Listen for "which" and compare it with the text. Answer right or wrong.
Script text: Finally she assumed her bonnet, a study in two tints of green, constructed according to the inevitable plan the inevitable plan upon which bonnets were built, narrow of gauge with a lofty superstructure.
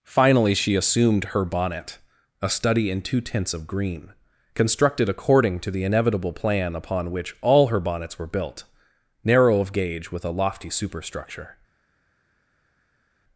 wrong